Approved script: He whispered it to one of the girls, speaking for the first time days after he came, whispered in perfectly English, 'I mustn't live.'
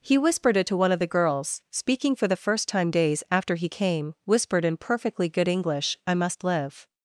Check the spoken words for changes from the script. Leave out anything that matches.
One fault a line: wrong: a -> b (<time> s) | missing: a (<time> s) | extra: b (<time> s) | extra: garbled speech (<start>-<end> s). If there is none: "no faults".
extra: good (5.3 s)
wrong: mustn't -> must (6.2 s)